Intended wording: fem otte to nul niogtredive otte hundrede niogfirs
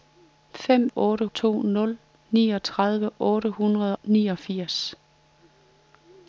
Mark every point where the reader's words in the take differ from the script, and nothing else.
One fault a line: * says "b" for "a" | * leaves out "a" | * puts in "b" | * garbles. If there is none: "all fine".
all fine